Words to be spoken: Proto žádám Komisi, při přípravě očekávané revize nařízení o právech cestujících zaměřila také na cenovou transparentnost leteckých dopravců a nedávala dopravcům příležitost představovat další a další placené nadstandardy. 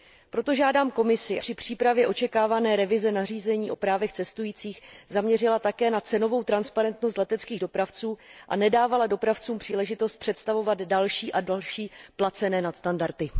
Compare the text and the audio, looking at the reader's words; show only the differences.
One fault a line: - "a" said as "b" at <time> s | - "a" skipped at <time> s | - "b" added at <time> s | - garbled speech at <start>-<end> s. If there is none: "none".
none